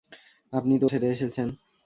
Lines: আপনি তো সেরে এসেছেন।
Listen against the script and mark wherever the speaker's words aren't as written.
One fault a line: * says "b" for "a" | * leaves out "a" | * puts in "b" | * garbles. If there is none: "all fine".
all fine